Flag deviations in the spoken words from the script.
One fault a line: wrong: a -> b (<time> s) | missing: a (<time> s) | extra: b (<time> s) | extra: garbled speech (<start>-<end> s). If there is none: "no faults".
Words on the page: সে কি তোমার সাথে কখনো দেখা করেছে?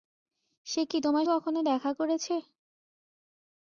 missing: সাথে (1.3 s)